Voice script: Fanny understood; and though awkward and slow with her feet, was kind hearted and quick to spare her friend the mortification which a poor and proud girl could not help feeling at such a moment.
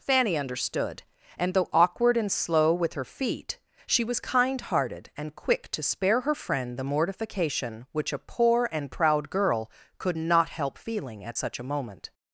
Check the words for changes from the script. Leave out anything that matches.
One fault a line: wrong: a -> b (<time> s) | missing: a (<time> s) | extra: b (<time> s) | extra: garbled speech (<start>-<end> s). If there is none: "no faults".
extra: she (3.8 s)